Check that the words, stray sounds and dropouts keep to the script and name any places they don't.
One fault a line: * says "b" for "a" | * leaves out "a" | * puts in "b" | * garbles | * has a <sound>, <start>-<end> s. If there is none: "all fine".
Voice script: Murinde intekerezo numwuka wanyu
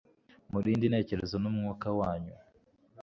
all fine